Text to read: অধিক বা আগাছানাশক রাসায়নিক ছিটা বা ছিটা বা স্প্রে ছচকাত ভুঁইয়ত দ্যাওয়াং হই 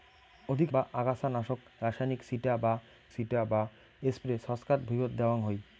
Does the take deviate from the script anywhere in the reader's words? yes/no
no